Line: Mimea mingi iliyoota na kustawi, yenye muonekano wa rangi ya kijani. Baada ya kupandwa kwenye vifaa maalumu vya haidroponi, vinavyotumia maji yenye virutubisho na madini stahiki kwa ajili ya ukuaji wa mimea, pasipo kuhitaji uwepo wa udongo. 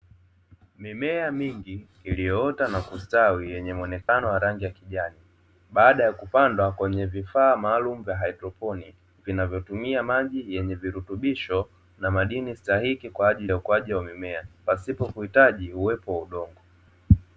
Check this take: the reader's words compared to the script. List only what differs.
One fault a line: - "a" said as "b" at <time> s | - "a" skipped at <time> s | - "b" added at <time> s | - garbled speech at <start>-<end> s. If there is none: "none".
none